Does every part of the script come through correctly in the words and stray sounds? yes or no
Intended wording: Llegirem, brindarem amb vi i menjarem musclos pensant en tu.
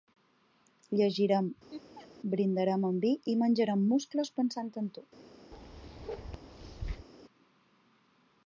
no